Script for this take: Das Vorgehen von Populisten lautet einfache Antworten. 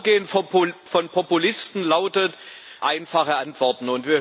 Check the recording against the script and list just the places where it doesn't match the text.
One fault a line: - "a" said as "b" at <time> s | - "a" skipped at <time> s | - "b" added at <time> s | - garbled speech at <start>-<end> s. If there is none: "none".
none